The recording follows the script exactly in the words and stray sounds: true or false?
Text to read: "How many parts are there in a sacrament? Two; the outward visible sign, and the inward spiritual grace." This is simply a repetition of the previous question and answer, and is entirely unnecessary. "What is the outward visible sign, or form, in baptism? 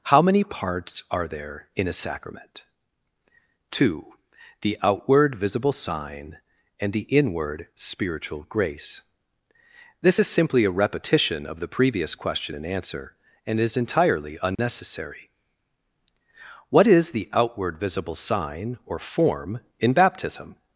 false